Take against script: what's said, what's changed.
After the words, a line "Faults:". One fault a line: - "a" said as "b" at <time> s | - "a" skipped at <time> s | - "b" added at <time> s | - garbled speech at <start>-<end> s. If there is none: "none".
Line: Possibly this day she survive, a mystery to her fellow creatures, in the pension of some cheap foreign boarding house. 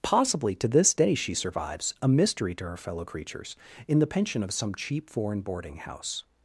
Possibly to this day she survives, a mystery to her fellow creatures, in the pension of some cheap foreign boarding house.
Faults:
- "to" added at 0.6 s
- "survive" said as "survives" at 1.3 s